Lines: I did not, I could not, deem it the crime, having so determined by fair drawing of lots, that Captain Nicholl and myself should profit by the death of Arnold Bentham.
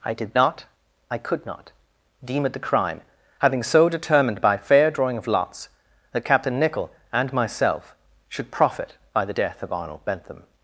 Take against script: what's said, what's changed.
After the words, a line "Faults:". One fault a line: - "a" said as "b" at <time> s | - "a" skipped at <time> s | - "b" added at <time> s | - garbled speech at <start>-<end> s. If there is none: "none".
I did not, I could not, deem it the crime, having so determined by fair drawing of lots, that Captain Nicholl and myself should profit by the death of Arnold Bentham.
Faults:
none